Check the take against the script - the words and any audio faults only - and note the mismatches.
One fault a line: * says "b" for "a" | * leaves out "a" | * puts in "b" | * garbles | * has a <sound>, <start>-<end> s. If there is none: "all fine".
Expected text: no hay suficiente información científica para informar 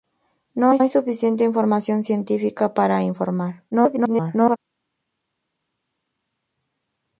* puts in "hay"
* garbles